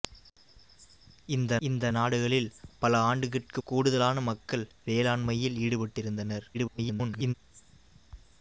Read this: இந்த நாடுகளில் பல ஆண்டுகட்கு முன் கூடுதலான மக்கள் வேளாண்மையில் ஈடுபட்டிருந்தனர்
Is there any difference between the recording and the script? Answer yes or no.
yes